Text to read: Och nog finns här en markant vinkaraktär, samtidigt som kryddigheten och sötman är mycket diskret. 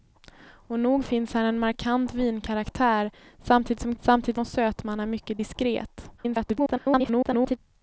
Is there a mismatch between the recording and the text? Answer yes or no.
yes